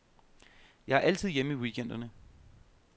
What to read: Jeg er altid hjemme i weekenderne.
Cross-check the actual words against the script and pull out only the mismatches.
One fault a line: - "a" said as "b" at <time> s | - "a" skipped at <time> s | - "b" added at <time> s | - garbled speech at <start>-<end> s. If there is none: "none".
none